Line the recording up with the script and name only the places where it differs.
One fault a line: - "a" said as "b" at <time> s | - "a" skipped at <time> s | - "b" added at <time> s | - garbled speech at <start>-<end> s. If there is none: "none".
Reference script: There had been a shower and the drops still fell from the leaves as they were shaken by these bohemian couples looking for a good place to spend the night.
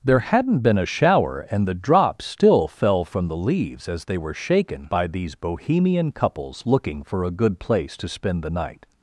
- "had" said as "hadn't" at 0.2 s